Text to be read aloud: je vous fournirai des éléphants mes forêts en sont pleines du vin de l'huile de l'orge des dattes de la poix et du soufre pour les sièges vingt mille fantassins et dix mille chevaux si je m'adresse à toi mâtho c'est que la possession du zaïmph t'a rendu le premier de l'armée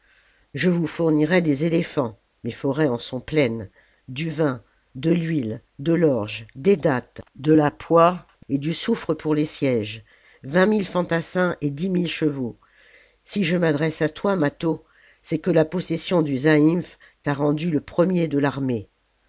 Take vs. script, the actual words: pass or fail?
pass